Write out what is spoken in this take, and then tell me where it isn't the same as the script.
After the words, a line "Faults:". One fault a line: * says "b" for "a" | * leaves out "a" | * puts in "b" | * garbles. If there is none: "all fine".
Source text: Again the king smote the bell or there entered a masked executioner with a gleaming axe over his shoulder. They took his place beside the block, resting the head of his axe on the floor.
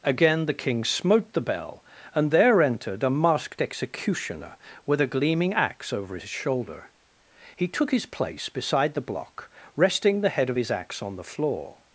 Again the king smote the bell and there entered a masked executioner with a gleaming axe over his shoulder. He took his place beside the block, resting the head of his axe on the floor.
Faults:
* says "and" for "or"
* says "He" for "They"